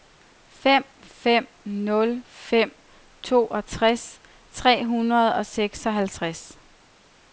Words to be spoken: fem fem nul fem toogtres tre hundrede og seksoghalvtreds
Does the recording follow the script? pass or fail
pass